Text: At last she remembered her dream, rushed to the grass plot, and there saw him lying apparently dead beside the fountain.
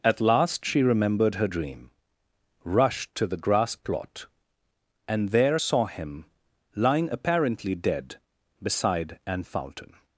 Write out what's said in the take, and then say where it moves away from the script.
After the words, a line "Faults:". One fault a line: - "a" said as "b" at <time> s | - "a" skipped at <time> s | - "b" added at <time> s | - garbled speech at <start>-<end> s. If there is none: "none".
At last she remembered her dream, rushed to the grass plot, and there saw him lying apparently dead beside an fountain.
Faults:
- "the" said as "an" at 9.3 s